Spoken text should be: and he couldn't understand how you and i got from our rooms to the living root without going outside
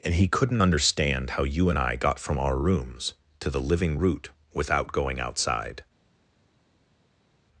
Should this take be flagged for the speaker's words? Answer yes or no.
no